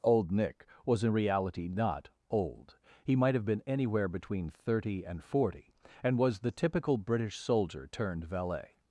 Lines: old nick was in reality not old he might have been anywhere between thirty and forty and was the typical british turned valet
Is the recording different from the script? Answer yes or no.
yes